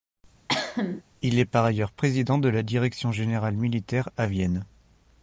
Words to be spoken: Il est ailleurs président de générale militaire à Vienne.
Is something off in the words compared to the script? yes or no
yes